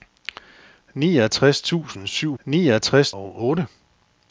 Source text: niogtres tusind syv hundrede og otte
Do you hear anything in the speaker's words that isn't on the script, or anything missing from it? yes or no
yes